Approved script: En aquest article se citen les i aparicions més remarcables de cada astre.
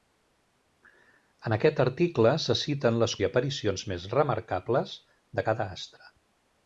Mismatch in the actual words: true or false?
false